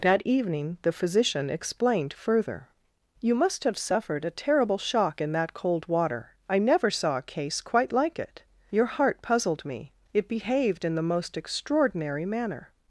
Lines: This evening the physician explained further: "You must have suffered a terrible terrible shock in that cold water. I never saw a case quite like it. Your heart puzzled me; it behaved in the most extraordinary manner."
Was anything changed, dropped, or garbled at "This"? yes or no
yes